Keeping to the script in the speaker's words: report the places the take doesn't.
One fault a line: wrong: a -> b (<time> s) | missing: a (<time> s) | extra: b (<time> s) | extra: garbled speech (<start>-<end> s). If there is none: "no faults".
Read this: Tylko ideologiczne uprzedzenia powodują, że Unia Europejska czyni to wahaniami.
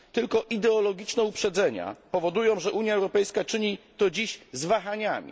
extra: dziś z (4.1 s)